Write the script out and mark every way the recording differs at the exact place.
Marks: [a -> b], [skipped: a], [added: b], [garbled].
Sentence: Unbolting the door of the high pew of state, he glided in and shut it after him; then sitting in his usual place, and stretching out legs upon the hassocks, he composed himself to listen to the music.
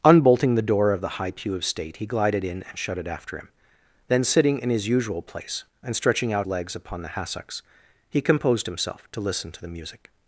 Unbolting the door of the high pew of state, he glided in and shut it after him; then sitting in his usual place, and stretching out legs upon the hassocks, he composed himself to listen to the music.